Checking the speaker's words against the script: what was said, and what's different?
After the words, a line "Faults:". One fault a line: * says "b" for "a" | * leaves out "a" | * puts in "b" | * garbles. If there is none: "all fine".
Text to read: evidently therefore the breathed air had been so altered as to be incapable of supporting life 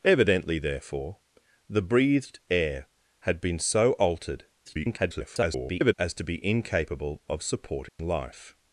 evidently therefore the breathed air had been so altered [garbled] as to be incapable of supporting life
Faults:
* garbles